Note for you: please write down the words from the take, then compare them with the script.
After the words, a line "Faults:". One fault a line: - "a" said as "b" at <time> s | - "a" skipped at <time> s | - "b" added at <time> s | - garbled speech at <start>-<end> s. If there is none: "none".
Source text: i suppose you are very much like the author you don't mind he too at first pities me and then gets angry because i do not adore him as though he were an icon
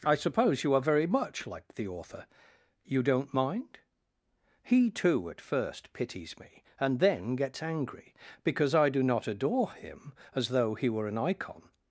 i suppose you are very much like the author you don't mind he too at first pities me and then gets angry because i do not adore him as though he were an icon
Faults:
none